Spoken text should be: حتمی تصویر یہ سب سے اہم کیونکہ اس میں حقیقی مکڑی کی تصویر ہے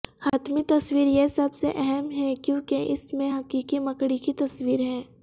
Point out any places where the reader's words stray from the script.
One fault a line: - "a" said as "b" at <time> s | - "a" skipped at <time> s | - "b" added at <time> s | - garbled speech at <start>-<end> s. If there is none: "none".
- "ہے" added at 2.1 s